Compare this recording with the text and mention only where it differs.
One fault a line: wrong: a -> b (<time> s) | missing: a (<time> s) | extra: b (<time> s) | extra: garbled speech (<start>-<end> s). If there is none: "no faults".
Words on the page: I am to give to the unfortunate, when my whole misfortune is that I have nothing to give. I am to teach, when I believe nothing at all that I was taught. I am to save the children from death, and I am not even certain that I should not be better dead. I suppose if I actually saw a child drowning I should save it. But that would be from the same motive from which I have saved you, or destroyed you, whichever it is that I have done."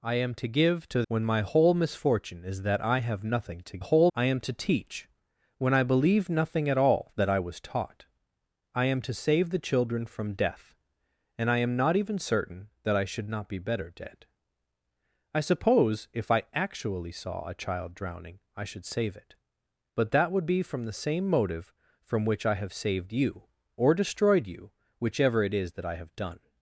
missing: the unfortunate (1.0 s)
wrong: give -> whole (3.8 s)